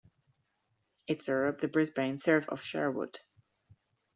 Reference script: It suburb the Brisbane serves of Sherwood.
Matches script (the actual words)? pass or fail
pass